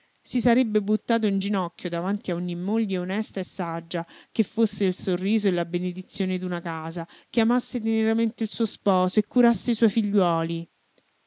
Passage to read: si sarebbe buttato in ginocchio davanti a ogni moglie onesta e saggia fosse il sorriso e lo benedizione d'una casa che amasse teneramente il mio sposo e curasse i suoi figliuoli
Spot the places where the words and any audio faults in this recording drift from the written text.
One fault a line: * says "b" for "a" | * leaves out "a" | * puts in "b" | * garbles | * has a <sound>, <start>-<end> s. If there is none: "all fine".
* puts in "che"
* says "la" for "lo"
* says "suo" for "mio"